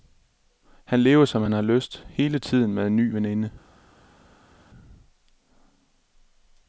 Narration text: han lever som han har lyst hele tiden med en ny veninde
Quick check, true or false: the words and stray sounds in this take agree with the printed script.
true